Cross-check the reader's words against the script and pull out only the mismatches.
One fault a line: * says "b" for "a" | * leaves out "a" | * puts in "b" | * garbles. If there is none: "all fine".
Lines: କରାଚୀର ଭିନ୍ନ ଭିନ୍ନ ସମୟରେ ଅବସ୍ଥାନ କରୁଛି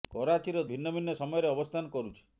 all fine